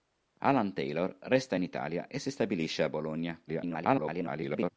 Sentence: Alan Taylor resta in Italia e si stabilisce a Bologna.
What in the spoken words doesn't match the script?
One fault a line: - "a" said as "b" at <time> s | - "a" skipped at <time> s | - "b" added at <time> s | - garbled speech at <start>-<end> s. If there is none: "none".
- garbled speech at 3.5-4.7 s